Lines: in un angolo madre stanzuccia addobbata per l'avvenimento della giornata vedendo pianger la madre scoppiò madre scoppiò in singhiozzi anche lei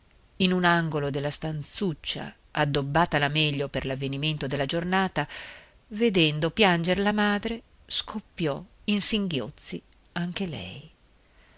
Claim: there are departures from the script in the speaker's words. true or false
true